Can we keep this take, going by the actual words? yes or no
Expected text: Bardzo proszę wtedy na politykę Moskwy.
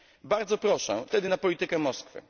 yes